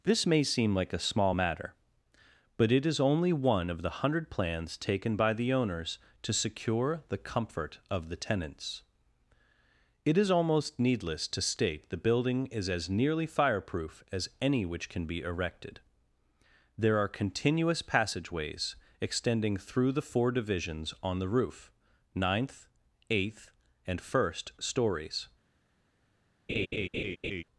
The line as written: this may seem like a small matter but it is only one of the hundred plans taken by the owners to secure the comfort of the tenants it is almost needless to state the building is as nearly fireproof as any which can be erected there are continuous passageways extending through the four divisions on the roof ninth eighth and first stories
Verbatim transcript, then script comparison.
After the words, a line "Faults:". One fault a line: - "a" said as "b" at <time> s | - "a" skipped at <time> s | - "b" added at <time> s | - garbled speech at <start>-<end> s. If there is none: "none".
this may seem like a small matter but it is only one of the hundred plans taken by the owners to secure the comfort of the tenants it is almost needless to state the building is as nearly fireproof as any which can be erected there are continuous passageways extending through the four divisions on the roof ninth eighth and first stories
Faults:
none